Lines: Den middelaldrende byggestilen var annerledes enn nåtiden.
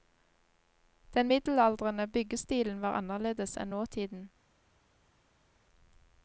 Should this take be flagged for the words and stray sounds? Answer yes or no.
no